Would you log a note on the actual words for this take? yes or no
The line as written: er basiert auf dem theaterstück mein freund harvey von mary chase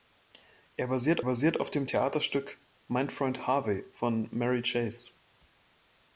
yes